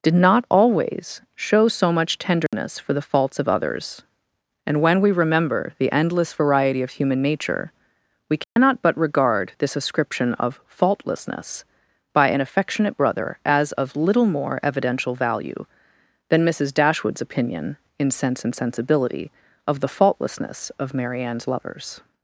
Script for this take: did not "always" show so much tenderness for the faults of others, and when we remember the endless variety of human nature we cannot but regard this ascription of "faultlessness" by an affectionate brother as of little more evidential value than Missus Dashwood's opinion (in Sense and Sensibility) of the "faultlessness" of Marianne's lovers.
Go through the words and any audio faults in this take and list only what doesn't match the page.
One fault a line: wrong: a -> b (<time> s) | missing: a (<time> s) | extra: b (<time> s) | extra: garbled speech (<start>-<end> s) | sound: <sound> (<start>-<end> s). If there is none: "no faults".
sound: dropout (2.5-2.5 s)
sound: dropout (8.4-8.6 s)